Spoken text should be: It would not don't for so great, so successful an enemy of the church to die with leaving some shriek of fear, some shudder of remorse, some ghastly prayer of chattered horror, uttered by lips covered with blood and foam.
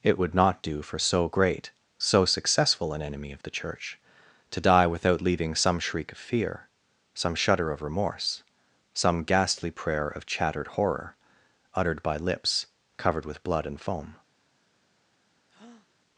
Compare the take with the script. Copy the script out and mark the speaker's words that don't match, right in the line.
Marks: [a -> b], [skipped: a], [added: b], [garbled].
It would not [don't -> do] for so great, so successful an enemy of the church to die [with -> without] leaving some shriek of fear, some shudder of remorse, some ghastly prayer of chattered horror, uttered by lips covered with blood and foam.